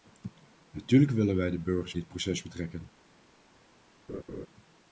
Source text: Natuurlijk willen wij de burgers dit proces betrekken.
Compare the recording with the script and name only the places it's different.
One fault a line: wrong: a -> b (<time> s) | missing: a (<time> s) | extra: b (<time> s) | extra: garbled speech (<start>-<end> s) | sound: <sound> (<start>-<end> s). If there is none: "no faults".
sound: laugh (4.1-4.5 s)